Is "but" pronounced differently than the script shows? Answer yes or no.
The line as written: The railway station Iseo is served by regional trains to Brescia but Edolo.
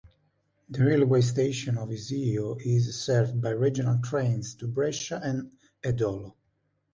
yes